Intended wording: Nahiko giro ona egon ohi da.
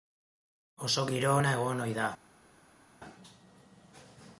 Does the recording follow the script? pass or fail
fail